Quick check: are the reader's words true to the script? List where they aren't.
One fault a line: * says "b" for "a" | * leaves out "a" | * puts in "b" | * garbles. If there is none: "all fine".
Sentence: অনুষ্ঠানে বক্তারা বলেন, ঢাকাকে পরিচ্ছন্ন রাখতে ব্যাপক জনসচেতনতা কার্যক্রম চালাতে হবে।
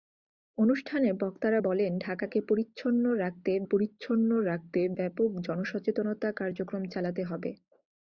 * puts in "পরিচ্ছন্ন রাখতে"